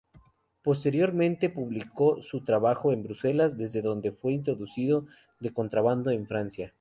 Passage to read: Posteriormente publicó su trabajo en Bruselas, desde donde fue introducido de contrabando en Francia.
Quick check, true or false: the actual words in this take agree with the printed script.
true